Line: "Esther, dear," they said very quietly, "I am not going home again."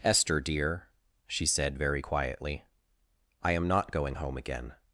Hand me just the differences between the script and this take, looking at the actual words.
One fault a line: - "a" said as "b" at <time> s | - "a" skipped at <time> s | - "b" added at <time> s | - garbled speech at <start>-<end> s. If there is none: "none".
- "they" said as "she" at 1.3 s